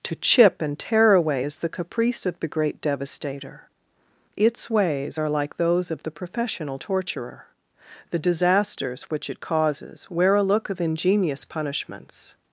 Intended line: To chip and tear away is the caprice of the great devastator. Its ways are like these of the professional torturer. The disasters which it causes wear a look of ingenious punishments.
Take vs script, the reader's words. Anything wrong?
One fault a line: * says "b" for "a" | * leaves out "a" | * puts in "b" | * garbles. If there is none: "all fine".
* says "those" for "these"